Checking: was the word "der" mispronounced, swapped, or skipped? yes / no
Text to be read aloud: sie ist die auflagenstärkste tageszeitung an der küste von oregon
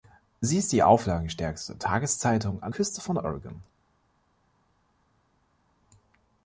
yes